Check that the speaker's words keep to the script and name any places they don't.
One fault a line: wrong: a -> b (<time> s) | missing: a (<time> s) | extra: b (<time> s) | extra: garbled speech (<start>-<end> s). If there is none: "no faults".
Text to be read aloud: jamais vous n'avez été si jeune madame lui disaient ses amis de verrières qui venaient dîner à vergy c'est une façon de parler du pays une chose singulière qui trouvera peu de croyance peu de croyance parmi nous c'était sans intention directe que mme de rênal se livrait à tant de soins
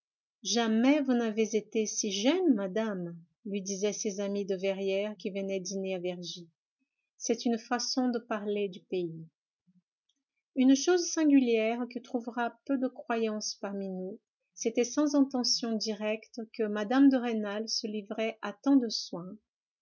missing: peu de croyance (13.5 s)